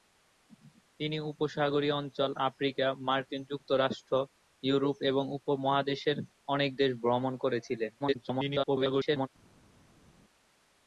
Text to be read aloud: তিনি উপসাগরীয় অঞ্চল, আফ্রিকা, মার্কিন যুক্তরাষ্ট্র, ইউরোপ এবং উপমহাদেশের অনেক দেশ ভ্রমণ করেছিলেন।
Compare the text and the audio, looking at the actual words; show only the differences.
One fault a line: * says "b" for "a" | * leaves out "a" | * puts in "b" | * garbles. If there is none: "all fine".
* garbles